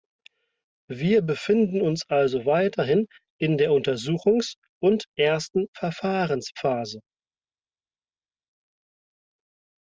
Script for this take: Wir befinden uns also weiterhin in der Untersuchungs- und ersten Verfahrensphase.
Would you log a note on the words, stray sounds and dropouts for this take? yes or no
no